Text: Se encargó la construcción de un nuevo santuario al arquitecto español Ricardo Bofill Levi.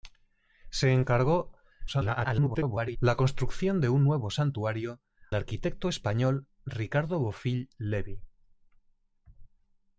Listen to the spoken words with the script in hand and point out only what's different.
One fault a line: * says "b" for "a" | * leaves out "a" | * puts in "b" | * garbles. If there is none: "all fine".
* garbles
* leaves out "al"